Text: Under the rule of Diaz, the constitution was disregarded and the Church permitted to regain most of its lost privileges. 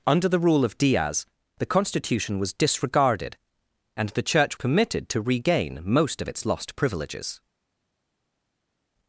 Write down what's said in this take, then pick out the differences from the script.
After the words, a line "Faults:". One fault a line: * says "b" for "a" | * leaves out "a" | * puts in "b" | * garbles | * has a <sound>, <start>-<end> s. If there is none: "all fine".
Under the rule of Diaz, the constitution was disregarded and the Church permitted to regain most of its lost privileges.
Faults:
all fine